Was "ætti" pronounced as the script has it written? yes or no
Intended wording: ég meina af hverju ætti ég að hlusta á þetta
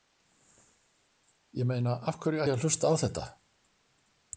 no